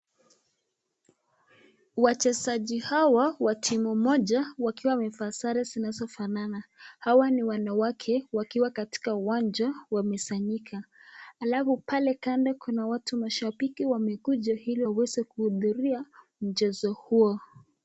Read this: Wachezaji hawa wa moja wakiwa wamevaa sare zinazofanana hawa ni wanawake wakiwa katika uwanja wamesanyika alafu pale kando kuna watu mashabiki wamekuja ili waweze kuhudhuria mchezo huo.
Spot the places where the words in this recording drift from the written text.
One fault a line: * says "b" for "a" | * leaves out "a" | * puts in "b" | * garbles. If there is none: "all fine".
* puts in "timu"